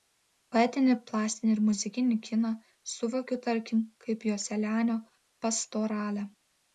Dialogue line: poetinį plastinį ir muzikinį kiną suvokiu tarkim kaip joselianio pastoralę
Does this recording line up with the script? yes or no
yes